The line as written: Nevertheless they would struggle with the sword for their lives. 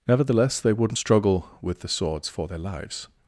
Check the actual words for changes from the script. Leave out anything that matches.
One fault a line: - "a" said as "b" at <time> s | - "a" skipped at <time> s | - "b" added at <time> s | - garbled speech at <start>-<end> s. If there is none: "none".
- "would" said as "wouldn't" at 0.7 s
- "sword" said as "swords" at 1.9 s